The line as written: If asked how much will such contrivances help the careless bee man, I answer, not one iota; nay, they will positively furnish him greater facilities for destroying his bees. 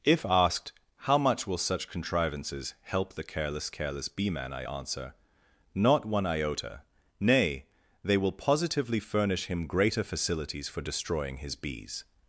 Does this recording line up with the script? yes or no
no